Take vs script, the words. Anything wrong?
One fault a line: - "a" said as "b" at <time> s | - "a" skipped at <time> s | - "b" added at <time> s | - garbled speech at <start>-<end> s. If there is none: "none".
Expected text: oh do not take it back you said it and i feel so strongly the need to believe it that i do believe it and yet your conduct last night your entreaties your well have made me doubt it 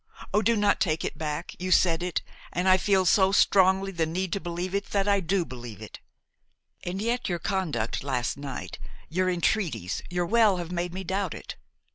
none